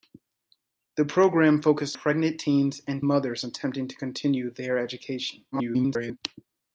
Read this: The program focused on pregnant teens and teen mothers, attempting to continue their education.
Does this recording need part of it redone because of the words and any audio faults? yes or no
yes